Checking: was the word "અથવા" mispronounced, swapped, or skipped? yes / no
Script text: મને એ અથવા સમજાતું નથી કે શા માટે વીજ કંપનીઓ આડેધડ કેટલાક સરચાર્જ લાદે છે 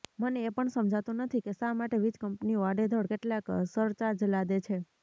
yes